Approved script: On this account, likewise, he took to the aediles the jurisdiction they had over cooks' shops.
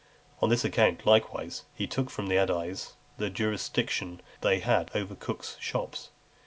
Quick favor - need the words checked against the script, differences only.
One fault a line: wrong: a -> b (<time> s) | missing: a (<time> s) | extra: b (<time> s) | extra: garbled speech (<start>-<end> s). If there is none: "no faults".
wrong: to -> from (2.1 s)